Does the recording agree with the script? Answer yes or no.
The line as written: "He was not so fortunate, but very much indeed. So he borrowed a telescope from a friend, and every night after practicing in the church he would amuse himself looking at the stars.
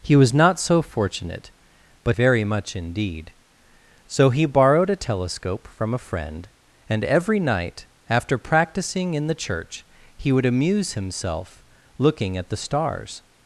yes